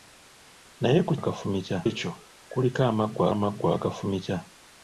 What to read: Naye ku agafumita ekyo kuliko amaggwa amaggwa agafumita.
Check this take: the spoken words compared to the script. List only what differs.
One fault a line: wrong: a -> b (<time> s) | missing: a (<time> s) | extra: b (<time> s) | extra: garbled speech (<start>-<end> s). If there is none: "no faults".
no faults